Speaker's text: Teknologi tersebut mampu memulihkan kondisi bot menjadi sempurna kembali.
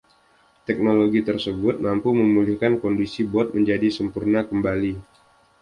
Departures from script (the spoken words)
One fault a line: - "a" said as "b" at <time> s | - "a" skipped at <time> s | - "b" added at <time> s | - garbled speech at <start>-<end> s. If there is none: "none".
none